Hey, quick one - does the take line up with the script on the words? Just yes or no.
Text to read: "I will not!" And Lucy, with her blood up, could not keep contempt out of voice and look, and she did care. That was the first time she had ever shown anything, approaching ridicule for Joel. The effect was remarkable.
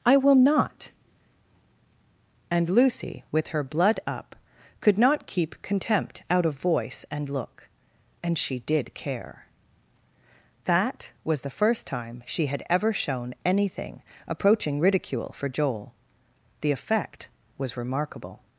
yes